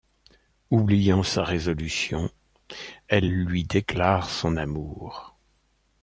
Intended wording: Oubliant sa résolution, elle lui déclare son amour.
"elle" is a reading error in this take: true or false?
false